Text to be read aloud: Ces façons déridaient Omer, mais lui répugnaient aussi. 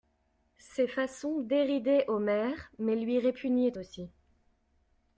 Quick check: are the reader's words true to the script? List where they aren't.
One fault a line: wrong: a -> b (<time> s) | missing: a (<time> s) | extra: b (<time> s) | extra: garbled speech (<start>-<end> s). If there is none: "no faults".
no faults